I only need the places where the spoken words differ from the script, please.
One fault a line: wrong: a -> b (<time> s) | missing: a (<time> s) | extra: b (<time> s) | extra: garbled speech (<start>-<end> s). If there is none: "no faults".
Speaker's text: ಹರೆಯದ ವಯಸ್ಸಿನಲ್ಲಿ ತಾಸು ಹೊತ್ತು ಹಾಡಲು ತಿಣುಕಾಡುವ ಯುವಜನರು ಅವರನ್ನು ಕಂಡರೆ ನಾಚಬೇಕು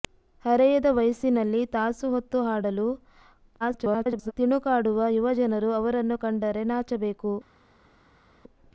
extra: garbled speech (3.6-4.3 s)